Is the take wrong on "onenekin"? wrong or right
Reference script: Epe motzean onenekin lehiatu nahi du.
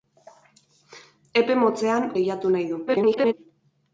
wrong